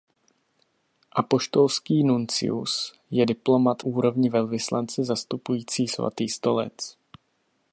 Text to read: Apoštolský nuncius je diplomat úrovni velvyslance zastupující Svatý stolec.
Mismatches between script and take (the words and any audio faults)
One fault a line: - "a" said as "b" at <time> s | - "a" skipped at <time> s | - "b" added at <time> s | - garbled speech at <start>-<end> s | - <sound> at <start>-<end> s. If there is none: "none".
none